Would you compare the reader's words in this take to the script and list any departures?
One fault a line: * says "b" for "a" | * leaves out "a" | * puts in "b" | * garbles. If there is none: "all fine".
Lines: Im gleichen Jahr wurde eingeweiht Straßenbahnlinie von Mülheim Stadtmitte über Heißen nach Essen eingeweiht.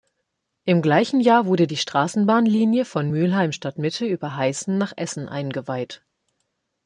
* says "die" for "eingeweiht"